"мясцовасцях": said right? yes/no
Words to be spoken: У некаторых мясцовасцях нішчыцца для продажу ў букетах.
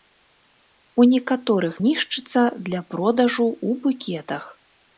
no